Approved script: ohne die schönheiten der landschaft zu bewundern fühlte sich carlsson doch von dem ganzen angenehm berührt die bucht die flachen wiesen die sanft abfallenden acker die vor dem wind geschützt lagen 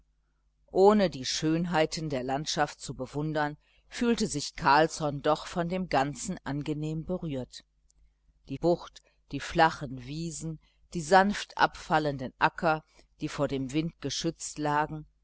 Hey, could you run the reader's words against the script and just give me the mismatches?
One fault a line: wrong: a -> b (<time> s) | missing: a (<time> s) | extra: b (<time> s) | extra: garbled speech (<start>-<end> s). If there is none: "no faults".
no faults